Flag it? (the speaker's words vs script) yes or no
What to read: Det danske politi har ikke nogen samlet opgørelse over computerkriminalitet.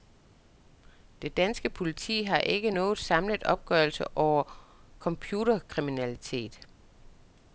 no